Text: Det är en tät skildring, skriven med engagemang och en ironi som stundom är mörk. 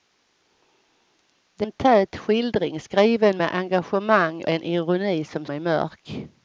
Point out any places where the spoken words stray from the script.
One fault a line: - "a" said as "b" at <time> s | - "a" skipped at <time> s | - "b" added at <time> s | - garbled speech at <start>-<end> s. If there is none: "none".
- "är" skipped at 1.7 s
- "och" skipped at 4.4 s
- "stundom" skipped at 5.4 s